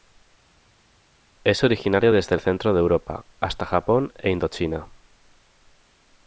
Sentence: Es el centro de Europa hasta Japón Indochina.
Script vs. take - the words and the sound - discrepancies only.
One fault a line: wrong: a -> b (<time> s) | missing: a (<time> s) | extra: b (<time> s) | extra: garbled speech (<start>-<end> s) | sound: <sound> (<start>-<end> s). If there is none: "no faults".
extra: originario desde (1.6 s)
extra: e (4.2 s)